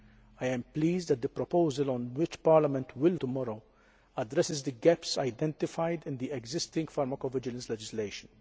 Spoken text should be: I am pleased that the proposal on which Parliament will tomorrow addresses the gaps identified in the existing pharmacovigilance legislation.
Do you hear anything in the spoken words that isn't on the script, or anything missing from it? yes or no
no